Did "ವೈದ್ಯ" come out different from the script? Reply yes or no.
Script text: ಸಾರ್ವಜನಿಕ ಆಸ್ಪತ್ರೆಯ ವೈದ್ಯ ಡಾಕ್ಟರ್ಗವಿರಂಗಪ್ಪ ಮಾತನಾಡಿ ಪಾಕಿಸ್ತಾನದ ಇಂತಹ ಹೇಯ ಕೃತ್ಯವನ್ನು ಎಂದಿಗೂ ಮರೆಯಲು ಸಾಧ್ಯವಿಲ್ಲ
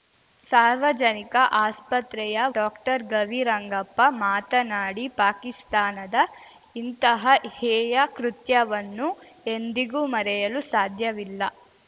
yes